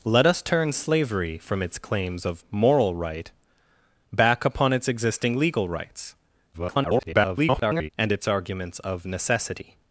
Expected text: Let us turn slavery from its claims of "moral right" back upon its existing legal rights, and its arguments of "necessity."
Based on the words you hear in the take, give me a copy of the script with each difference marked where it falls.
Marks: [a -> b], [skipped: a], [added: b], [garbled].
Let us turn slavery from its claims of "moral right" back upon its existing legal rights, [garbled] and its arguments of "necessity."